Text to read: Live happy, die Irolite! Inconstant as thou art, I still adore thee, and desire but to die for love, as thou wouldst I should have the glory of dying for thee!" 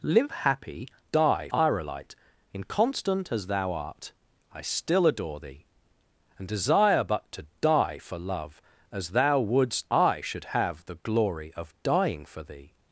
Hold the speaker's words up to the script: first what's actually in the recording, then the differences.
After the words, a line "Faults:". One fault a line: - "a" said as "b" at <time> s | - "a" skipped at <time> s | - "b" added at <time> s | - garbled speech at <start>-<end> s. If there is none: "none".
Live happy, die Irolite! Inconstant as thou art, I still adore thee, and desire but to die for love, as thou wouldst I should have the glory of dying for thee!"
Faults:
none